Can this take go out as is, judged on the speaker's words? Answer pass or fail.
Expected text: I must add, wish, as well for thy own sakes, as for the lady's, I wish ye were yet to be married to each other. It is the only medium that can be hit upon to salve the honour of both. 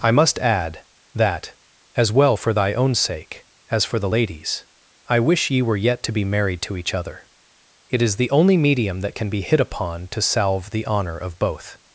fail